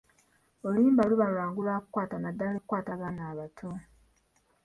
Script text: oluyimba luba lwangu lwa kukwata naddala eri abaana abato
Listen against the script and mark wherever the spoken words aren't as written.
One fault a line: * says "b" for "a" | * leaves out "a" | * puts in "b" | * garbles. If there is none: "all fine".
* says "kukwata" for "eri"